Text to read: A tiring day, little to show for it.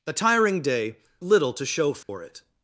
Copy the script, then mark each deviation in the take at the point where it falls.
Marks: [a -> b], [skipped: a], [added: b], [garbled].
A tiring day, little to show for it.